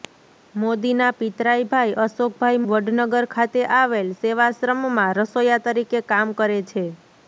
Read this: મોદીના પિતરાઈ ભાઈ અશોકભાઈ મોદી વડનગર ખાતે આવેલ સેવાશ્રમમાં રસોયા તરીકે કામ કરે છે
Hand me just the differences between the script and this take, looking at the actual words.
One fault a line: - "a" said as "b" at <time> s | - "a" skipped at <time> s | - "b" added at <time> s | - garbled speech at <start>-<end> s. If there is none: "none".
- "મોદી" skipped at 2.6 s